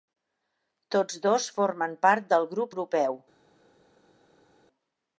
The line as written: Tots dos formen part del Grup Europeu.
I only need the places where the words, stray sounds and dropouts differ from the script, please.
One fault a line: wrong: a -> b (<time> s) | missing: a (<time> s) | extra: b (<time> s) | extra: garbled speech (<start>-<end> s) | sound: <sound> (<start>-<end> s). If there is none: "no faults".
no faults